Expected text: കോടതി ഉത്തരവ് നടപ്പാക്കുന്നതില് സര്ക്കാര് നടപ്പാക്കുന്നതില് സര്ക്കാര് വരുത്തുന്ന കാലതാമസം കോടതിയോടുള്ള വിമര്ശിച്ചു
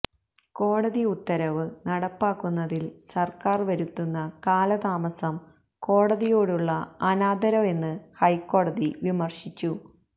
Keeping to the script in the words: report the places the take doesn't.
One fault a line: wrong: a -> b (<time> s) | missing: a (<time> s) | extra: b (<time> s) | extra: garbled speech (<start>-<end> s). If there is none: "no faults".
missing: നടപ്പാക്കുന്നതില് സര്ക്കാര് (3.7 s)
extra: അനാദരവെന്ന് ഹൈക്കോടതി (7.1 s)